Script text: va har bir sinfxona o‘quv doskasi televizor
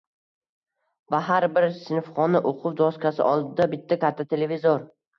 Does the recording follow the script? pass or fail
fail